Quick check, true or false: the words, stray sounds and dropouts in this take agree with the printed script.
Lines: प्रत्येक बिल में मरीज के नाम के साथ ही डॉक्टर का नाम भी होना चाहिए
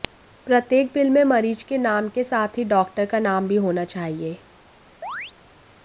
false